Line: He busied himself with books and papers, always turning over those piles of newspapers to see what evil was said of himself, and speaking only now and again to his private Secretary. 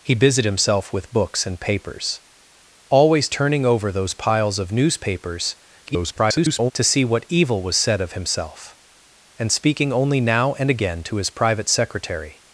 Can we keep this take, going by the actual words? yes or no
no